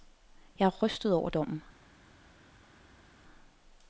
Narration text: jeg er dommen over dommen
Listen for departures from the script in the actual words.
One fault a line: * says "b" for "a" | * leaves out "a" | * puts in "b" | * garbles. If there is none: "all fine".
* says "rystet" for "dommen"